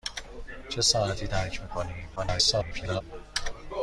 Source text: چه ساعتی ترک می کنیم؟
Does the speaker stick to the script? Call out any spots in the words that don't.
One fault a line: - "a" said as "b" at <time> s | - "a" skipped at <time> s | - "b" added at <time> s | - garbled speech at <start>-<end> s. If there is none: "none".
- garbled speech at 2.2-3.0 s